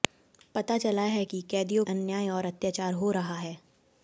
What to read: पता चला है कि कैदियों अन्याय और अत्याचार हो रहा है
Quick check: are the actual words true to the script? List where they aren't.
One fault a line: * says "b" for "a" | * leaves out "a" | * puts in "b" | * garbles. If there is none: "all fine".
all fine